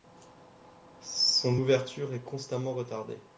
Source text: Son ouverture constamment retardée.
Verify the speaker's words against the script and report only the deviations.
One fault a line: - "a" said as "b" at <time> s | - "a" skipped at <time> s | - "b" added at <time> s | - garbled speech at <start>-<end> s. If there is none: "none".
- "est" added at 2.1 s